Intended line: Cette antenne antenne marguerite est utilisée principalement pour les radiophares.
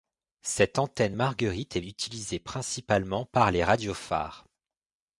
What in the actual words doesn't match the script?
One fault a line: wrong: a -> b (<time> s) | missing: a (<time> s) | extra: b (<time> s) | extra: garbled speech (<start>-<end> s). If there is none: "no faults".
missing: antenne (1.1 s)
wrong: pour -> par (3.2 s)